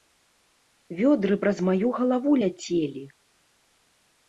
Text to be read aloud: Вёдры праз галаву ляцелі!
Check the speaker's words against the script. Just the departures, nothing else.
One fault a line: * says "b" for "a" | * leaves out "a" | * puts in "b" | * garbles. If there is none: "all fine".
* puts in "маю"